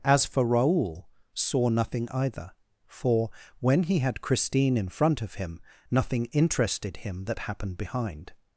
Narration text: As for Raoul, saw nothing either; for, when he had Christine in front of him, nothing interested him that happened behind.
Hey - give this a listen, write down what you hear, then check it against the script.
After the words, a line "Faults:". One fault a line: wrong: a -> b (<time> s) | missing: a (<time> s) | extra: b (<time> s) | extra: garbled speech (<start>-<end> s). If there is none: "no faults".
As for Raoul, saw nothing either; for, when he had Christine in front of him, nothing interested him that happened behind.
Faults:
no faults